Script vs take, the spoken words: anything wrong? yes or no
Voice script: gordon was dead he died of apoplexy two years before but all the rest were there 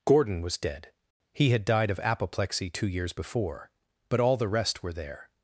yes